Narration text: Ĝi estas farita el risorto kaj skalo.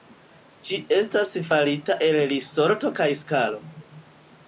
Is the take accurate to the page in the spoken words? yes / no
yes